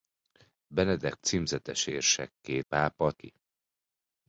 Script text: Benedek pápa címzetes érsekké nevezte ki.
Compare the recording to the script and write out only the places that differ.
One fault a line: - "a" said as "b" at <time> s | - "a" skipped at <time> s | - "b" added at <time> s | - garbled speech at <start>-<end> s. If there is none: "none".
- "pápa" skipped at 1.1 s
- "nevezte" said as "pápa" at 2.6 s